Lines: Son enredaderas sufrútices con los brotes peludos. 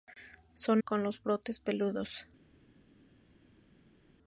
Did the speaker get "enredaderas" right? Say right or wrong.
wrong